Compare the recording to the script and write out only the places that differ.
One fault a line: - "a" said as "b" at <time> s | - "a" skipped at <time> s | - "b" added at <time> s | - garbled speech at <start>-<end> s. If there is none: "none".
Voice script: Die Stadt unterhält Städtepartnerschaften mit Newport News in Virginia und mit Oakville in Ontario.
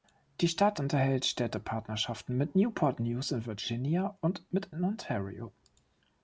- "Oakville" skipped at 4.7 s